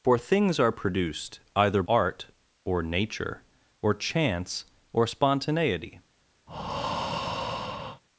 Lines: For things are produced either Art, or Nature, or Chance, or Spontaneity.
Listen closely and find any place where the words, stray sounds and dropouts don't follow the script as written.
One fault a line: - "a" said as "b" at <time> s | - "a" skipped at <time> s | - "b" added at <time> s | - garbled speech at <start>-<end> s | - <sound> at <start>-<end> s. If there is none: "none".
- breath at 6.5-8.0 s